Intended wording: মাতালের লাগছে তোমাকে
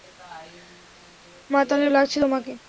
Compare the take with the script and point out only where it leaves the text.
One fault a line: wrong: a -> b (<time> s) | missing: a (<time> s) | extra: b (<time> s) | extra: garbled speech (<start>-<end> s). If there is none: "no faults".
no faults